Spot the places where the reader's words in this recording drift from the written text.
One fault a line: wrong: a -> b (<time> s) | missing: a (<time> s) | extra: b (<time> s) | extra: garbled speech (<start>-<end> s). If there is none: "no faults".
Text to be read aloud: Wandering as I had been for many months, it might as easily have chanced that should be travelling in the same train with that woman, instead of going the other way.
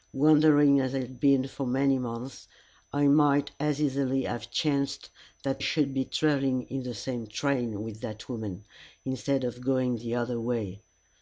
no faults